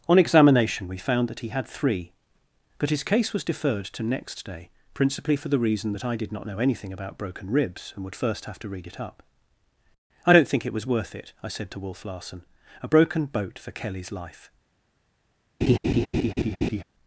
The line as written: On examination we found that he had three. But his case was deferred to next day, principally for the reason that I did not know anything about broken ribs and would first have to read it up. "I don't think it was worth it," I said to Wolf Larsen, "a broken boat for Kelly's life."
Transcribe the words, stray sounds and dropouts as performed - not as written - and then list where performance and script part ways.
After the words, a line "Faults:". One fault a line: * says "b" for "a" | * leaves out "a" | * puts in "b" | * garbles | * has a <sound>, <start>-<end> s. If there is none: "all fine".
On examination we found that he had three. But his case was deferred to next day, principally for the reason that I did not know anything about broken ribs and would first have to read it up. "I don't think it was worth it," I said to Wolf Larsen, "a broken boat for Kelly's life."
Faults:
* has a laugh, 15.6-16.8 s